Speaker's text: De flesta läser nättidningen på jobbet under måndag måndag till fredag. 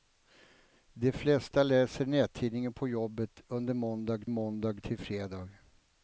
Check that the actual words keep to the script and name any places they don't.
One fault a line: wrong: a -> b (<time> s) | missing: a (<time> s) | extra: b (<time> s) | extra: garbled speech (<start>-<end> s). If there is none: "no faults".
no faults